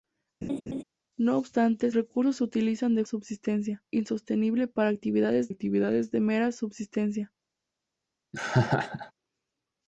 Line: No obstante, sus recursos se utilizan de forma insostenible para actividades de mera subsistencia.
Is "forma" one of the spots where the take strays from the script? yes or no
yes